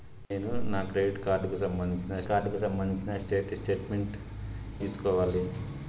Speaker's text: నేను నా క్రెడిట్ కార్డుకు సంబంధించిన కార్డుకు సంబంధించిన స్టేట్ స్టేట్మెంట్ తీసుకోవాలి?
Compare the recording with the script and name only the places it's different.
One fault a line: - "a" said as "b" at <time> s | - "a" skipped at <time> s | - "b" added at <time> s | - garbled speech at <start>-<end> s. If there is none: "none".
none